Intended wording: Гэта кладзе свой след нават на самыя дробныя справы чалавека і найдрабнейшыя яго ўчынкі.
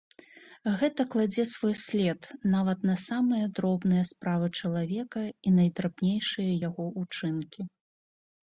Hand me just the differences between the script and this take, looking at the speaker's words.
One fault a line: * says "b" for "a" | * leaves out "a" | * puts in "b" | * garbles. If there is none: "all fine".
all fine